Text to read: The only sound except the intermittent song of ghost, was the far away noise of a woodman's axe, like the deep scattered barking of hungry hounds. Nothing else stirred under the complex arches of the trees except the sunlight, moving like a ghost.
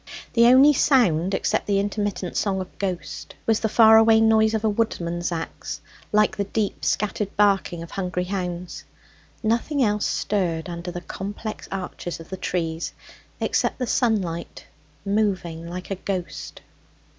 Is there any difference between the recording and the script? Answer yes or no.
no